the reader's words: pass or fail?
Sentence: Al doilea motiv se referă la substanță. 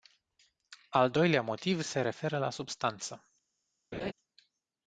pass